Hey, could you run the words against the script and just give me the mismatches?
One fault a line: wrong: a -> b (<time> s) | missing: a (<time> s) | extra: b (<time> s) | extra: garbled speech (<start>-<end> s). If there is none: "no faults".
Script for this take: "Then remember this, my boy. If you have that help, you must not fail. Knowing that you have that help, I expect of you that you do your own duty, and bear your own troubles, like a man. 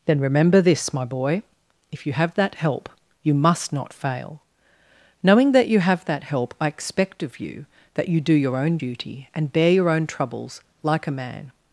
no faults